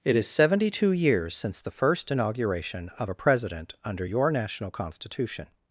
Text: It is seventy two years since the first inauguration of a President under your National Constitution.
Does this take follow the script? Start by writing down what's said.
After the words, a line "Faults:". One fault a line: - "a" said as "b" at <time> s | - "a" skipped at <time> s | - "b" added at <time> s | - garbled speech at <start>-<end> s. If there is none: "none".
It is seventy two years since the first inauguration of a President under your National Constitution.
Faults:
none